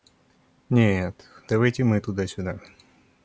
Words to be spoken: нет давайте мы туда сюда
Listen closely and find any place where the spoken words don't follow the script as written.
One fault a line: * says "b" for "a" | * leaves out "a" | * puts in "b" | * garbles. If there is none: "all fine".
all fine